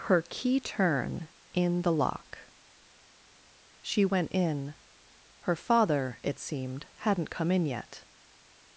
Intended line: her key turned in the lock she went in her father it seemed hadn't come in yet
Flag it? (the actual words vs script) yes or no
yes